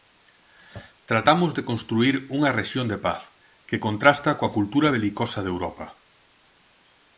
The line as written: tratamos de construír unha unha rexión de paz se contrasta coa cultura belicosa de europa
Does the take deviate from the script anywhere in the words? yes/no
yes